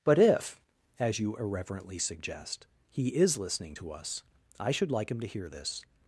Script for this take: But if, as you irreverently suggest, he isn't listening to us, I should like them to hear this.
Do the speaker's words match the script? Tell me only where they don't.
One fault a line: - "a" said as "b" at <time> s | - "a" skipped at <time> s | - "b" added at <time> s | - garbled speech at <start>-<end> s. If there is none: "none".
- "isn't" said as "is" at 3.1 s
- "them" said as "him" at 5.1 s